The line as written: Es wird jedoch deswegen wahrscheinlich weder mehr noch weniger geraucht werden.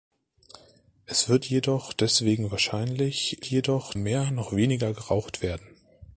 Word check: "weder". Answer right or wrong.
wrong